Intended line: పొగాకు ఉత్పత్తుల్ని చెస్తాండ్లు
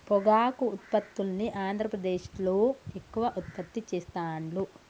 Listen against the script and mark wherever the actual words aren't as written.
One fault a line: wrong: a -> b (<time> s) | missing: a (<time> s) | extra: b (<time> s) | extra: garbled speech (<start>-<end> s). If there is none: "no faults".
extra: ఆంద్రప్రదేశ్లో ఎక్కువ ఉత్పత్తి (1.6 s)